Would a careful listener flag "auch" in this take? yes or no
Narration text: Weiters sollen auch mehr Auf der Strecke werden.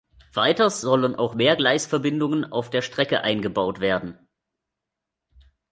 no